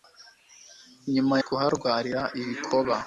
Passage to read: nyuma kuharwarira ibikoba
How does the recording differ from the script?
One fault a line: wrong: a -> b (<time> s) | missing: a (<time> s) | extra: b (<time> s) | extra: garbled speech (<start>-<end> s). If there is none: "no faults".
no faults